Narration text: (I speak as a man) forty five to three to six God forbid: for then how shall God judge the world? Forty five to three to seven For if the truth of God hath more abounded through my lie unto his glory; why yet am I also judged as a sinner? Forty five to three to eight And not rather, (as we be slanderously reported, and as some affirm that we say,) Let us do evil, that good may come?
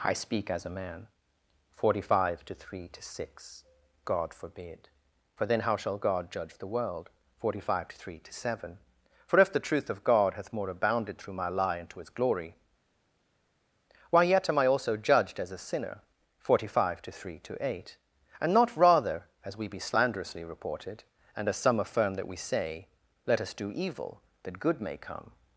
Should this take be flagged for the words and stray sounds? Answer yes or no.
no